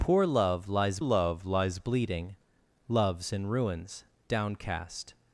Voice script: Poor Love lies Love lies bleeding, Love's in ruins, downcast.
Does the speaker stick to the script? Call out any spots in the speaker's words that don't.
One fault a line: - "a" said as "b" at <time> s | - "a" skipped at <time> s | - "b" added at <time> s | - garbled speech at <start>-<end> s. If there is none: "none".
none